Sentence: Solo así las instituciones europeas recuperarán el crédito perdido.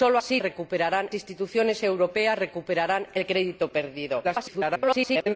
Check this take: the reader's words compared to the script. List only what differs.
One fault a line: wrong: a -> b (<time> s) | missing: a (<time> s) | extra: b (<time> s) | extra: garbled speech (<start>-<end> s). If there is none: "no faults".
wrong: las -> recuperarán (0.4 s)
extra: garbled speech (4.2-5.4 s)